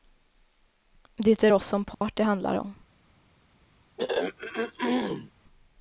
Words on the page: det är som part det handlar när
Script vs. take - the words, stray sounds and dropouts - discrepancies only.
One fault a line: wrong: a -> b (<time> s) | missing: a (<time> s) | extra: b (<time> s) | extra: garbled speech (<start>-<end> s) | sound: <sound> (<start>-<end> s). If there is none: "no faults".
extra: oss (1.5 s)
sound: dropout (1.9-2.0 s)
wrong: när -> om (2.5 s)
sound: throat clearing (4.0-5.3 s)